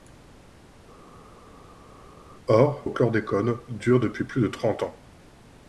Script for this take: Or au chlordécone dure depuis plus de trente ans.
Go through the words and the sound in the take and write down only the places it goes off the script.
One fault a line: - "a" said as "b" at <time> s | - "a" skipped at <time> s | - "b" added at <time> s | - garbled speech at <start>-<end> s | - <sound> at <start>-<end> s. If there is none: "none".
none